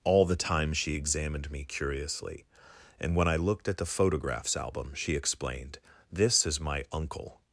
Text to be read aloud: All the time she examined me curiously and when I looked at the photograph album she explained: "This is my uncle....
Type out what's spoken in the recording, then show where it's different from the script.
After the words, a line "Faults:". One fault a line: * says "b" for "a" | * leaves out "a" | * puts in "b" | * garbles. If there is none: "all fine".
All the time she examined me curiously and when I looked at the photographs album she explained: "This is my uncle....
Faults:
* says "photographs" for "photograph"